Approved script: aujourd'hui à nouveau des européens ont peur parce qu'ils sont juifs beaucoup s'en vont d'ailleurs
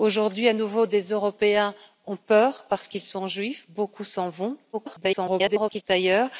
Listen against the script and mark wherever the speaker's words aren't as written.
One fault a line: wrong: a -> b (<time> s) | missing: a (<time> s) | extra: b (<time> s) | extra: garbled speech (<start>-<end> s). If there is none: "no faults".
extra: garbled speech (4.7-5.8 s)